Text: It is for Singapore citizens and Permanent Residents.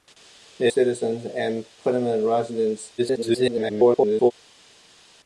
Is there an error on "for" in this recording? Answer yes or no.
yes